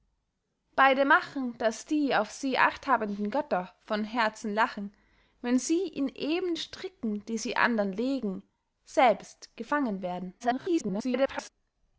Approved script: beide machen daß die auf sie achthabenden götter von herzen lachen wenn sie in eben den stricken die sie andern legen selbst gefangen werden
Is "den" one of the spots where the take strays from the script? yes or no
yes